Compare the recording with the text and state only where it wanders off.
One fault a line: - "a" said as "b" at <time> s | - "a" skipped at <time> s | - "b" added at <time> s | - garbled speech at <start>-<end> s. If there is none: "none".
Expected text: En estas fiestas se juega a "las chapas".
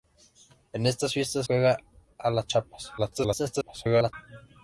- "se" skipped at 1.4 s
- garbled speech at 3.0-4.1 s